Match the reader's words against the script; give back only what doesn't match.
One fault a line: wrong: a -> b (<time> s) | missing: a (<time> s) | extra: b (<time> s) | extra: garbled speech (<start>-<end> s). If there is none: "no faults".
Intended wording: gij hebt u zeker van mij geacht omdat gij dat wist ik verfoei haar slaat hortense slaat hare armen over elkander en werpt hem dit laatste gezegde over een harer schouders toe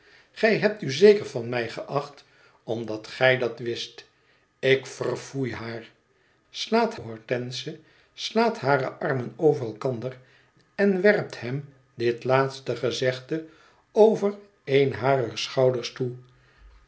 no faults